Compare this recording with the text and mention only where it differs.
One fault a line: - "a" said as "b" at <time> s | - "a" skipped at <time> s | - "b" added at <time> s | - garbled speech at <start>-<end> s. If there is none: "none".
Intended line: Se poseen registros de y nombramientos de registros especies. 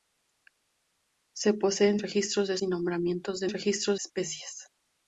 none